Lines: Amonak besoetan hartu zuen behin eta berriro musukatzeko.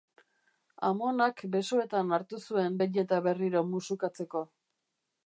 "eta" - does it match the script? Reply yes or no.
yes